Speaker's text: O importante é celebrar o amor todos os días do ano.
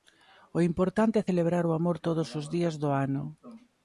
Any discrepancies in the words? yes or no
no